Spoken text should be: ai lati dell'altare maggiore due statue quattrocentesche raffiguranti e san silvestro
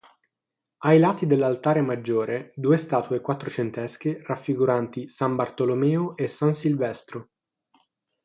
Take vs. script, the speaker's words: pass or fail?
fail